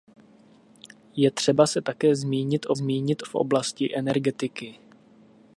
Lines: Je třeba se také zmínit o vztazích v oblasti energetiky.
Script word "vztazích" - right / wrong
wrong